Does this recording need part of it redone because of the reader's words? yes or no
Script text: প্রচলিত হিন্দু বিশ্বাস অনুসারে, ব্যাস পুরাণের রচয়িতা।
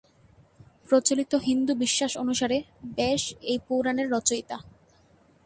yes